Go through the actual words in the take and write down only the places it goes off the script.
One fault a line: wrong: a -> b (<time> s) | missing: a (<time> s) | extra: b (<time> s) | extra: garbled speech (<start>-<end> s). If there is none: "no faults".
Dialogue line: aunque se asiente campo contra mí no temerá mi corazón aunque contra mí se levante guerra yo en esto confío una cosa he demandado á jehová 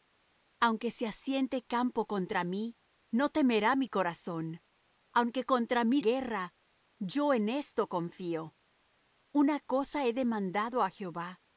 missing: se levante (6.0 s)